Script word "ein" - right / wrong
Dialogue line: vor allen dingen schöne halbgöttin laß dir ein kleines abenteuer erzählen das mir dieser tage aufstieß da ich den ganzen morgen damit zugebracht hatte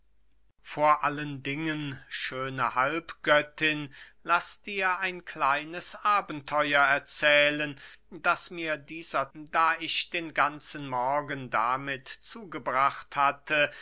right